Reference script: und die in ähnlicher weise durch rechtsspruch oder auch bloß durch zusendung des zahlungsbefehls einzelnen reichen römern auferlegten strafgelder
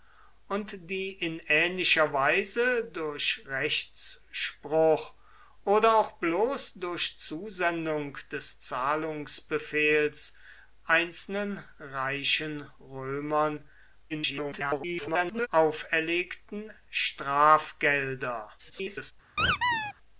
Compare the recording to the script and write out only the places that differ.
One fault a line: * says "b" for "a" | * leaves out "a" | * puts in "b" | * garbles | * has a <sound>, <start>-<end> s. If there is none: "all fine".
* garbles
* garbles
* has a squeak, 19.4-19.9 s